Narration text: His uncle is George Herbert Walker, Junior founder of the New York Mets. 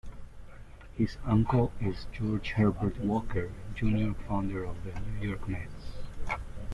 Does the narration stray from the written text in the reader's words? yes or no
no